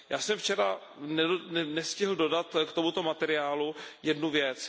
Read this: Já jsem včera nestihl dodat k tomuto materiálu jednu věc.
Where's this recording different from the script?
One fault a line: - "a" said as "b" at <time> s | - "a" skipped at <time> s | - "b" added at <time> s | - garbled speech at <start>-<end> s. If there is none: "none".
none